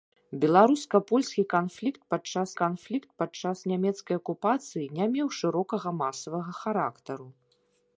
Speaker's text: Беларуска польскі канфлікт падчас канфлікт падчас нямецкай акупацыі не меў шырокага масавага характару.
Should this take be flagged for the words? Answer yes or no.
no